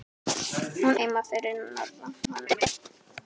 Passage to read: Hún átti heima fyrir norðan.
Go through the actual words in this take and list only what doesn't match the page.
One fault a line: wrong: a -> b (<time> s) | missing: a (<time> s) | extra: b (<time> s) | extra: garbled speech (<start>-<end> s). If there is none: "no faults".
missing: átti (1.0 s)
extra: garbled speech (2.2-2.7 s)